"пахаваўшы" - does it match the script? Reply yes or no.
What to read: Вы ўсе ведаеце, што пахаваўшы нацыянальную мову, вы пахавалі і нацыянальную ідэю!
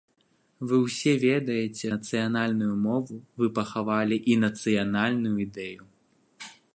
no